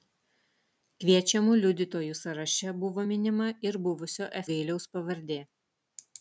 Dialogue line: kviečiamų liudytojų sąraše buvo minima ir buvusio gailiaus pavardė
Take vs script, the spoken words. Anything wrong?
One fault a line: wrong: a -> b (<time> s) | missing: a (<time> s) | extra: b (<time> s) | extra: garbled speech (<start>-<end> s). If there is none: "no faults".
no faults